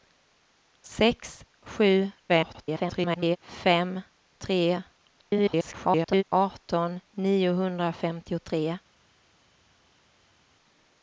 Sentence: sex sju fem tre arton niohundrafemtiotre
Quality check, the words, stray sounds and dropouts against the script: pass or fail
fail